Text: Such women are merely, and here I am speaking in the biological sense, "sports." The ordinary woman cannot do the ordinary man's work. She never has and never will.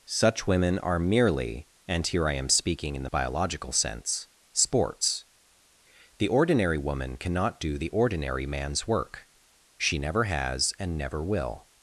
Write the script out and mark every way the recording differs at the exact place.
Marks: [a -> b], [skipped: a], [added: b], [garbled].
Such women are merely, and here I am speaking in the biological sense, "sports." The ordinary woman cannot do the ordinary man's work. She never has and never will.